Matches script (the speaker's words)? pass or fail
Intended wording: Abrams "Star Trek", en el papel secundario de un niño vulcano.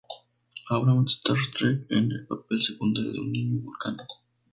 pass